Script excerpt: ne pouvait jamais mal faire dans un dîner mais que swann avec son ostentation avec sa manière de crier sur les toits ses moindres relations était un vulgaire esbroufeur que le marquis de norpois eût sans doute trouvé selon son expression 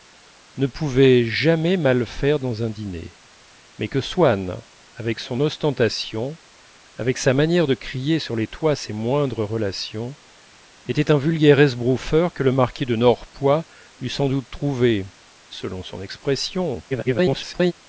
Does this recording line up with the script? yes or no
no